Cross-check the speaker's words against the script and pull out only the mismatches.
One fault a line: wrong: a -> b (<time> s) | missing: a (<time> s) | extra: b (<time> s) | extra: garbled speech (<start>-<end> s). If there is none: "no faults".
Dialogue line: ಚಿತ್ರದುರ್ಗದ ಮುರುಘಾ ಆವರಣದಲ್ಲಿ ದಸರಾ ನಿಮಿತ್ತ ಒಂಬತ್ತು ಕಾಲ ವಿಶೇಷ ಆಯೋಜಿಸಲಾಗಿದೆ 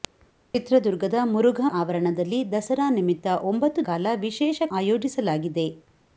no faults